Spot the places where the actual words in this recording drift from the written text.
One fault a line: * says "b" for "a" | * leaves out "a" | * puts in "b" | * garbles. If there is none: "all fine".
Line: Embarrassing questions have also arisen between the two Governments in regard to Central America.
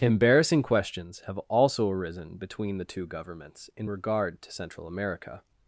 all fine